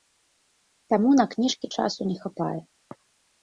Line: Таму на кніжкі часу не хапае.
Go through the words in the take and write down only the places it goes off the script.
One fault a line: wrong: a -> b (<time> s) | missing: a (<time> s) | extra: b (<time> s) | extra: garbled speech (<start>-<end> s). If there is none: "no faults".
no faults